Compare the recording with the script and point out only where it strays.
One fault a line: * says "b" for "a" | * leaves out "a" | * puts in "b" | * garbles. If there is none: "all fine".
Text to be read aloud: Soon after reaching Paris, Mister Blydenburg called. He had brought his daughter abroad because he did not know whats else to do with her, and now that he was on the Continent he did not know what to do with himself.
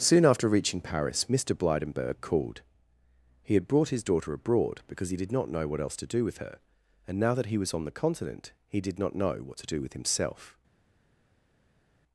* says "what" for "whats"